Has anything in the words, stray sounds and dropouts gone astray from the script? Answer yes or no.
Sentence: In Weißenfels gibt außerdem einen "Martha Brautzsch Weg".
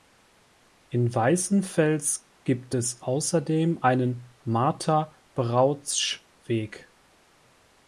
yes